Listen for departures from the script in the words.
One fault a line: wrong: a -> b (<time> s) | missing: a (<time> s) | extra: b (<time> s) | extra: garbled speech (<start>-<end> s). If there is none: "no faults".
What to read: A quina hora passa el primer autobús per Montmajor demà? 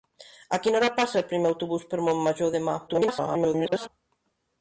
extra: garbled speech (2.9-3.9 s)